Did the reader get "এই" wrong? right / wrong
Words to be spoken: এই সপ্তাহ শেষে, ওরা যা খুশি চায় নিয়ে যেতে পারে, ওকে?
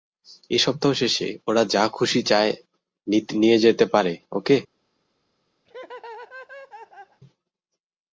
right